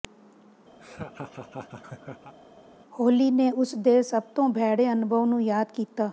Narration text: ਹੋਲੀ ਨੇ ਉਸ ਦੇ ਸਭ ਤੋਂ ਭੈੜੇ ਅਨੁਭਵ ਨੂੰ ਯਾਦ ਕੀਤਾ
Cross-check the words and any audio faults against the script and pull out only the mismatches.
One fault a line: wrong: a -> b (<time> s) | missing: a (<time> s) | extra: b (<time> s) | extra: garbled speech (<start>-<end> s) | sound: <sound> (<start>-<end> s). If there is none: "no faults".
sound: laugh (0.8-2.3 s)